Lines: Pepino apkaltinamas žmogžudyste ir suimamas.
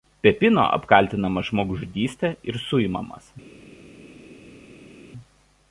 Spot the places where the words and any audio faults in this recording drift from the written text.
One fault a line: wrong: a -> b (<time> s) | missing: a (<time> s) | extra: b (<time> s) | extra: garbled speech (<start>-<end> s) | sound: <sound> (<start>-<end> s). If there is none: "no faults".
no faults